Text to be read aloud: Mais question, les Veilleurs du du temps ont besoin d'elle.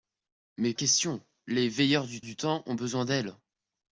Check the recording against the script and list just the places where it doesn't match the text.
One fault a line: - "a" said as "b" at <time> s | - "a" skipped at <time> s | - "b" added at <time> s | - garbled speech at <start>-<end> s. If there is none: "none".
none